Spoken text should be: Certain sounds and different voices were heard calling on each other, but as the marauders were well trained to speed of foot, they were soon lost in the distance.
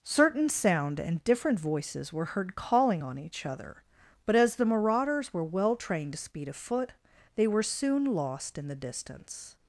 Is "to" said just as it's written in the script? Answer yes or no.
yes